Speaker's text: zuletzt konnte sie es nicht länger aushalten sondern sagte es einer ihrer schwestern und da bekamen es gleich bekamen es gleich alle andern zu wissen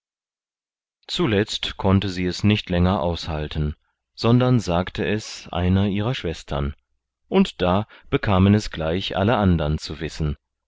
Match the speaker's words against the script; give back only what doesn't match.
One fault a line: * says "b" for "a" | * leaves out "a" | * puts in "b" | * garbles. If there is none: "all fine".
* leaves out "bekamen es gleich"